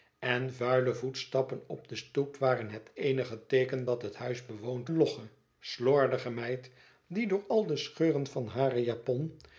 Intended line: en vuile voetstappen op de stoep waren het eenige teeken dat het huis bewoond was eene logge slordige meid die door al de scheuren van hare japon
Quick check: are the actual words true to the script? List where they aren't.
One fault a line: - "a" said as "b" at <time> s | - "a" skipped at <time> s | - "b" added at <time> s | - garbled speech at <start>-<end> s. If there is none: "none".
- "was eene" skipped at 4.9 s